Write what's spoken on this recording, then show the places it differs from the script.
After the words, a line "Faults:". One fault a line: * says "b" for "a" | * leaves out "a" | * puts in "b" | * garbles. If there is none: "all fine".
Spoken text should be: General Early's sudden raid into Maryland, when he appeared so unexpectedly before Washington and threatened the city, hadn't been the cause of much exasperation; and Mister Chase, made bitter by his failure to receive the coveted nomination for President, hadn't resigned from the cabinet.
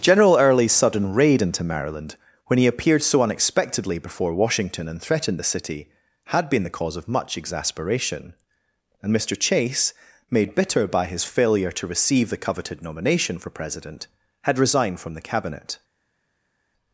General Early's sudden raid into Maryland, when he appeared so unexpectedly before Washington and threatened the city, had been the cause of much exasperation; and Mister Chase, made bitter by his failure to receive the coveted nomination for President, had resigned from the cabinet.
Faults:
* says "had" for "hadn't"
* says "had" for "hadn't"